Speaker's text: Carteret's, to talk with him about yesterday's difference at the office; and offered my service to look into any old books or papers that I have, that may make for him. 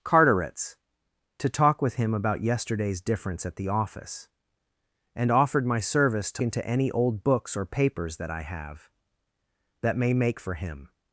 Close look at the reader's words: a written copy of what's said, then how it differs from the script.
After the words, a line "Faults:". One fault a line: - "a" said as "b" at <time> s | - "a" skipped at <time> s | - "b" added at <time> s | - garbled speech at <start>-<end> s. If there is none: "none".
Carteret's, to talk with him about yesterday's difference at the office; and offered my service to into any old books or papers that I have, that may make for him.
Faults:
- "look" skipped at 6.4 s